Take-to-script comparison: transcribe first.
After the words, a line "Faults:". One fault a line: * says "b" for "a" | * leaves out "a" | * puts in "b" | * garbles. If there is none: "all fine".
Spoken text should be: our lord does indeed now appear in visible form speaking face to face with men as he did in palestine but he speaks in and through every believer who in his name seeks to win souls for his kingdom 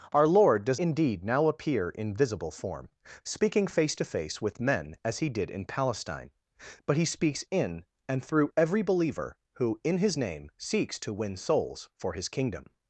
our lord does indeed now appear in visible form speaking face to face with men as he did in palestine but he speaks in and through every believer who in his name seeks to win souls for his kingdom
Faults:
all fine